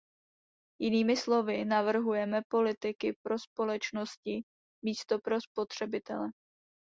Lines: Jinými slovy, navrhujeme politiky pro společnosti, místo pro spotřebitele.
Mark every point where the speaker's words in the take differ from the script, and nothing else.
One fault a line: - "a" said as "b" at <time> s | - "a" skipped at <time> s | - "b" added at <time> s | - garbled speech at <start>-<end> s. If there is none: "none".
none